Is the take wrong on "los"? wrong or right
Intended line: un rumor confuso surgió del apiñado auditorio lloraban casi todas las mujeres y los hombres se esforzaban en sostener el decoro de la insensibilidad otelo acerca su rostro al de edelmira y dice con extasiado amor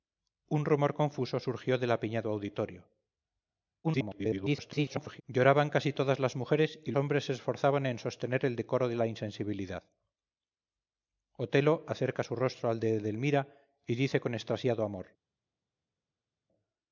wrong